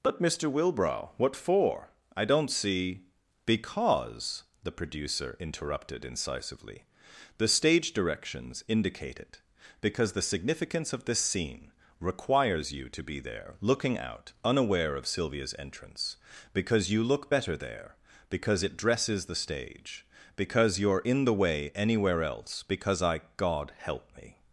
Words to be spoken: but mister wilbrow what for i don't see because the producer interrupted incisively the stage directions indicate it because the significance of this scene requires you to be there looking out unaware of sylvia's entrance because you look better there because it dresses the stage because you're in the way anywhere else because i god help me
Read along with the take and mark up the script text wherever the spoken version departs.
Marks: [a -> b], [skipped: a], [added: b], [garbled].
but mister wilbrow what for i don't see because the producer interrupted incisively the stage directions indicate it because the significance of this scene requires you to be there looking out unaware of sylvia's entrance because you look better there because it dresses the stage because you're in the way anywhere else because i god help me